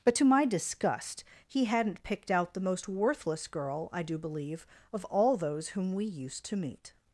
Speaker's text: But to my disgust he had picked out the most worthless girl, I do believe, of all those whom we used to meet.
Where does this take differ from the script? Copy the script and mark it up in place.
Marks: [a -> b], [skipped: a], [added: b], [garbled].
But to my disgust he [had -> hadn't] picked out the most worthless girl, I do believe, of all those whom we used to meet.